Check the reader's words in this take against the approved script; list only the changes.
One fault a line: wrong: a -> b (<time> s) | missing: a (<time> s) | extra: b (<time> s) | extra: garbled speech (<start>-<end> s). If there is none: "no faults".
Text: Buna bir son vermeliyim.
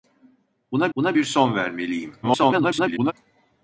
extra: buna (1.0 s)
extra: garbled speech (2.2-3.1 s)